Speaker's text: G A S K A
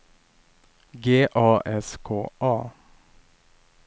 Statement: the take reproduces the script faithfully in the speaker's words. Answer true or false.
true